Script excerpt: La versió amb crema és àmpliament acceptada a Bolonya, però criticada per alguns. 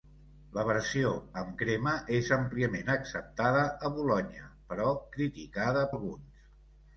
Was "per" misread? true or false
true